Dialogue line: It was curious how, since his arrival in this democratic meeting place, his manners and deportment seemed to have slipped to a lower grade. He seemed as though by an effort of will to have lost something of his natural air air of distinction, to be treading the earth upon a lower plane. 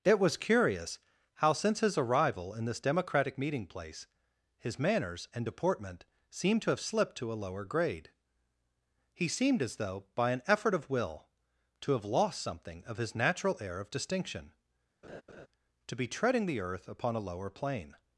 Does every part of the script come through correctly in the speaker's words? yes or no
no